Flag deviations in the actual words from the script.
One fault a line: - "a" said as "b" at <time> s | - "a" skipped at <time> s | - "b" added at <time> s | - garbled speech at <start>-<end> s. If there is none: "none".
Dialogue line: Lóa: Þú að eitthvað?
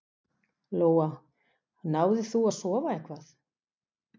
- "Náðir" added at 2.0 s
- "sofa" added at 2.6 s